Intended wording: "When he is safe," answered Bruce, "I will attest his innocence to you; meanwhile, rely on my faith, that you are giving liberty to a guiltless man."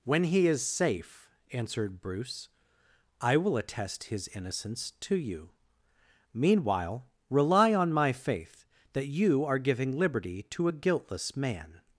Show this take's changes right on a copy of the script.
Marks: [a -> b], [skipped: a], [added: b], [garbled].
"When he is safe," answered Bruce, "I will attest his innocence to you; meanwhile, rely on my faith, that you are giving liberty to a guiltless man."